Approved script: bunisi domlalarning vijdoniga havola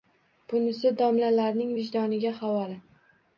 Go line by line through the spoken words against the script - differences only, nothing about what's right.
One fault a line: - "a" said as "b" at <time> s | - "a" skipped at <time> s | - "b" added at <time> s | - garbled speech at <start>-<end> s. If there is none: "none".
none